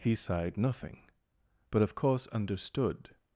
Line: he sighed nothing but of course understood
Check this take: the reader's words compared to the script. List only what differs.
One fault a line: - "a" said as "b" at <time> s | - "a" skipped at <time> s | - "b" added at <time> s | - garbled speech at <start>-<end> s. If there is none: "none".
none